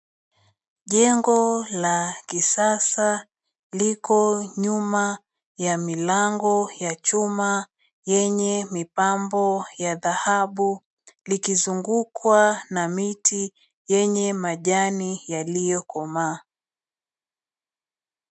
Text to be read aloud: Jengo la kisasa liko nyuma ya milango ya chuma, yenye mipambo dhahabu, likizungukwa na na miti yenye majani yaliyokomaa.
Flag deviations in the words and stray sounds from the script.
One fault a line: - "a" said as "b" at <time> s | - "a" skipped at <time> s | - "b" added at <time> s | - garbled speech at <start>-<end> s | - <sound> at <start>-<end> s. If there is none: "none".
- "ya" added at 9.8 s
- "na" skipped at 12.9 s